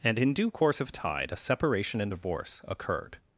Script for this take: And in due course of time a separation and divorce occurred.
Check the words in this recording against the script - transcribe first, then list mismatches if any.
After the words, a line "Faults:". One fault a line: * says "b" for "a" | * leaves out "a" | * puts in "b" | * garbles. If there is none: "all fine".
And in due course of tide a separation and divorce occurred.
Faults:
* says "tide" for "time"